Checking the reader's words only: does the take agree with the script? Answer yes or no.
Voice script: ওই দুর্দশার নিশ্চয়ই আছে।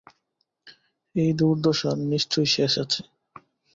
no